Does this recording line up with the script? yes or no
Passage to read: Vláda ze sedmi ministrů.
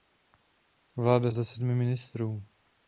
yes